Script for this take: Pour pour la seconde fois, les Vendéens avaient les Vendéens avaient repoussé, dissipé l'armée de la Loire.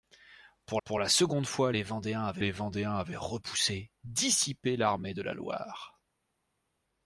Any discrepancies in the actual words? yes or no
no